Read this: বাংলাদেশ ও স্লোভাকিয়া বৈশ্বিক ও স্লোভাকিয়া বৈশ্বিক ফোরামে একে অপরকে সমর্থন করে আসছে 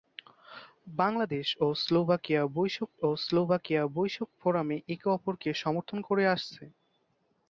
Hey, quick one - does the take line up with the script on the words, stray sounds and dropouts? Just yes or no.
yes